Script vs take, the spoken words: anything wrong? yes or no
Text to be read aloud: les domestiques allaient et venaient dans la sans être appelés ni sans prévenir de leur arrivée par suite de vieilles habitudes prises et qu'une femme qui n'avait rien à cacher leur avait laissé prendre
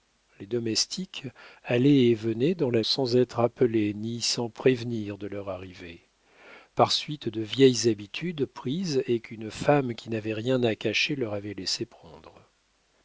no